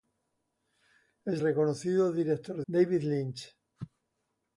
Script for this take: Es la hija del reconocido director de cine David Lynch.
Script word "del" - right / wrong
wrong